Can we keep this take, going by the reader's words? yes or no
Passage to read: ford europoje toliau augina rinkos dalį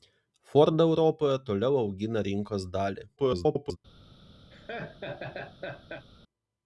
no